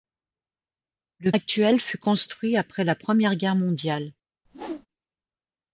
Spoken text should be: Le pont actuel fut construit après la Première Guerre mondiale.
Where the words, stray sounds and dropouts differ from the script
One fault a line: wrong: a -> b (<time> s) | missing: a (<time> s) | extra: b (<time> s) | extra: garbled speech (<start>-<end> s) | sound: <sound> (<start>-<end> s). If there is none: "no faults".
missing: pont (1.3 s)
sound: whoosh (4.4-4.9 s)